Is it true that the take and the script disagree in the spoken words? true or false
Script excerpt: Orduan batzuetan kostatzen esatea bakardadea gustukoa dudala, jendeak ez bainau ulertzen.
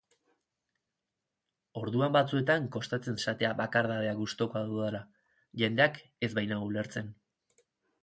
false